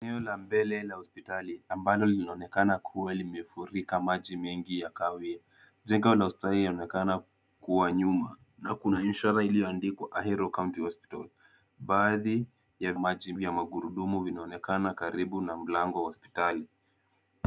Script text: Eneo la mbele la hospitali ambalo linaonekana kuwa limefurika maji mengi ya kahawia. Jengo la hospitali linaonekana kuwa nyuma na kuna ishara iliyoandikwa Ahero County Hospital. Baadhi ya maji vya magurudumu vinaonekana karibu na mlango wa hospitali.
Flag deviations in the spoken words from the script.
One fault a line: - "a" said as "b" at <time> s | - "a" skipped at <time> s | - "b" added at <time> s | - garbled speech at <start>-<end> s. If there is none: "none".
none